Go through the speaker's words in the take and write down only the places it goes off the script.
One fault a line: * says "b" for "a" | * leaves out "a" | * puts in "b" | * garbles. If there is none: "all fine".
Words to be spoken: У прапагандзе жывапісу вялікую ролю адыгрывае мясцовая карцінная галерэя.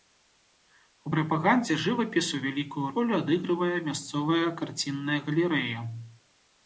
all fine